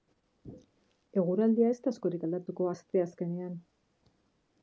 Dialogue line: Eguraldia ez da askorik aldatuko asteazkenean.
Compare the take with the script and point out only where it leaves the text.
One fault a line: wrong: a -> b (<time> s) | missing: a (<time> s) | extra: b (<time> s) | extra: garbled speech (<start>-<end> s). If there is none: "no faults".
no faults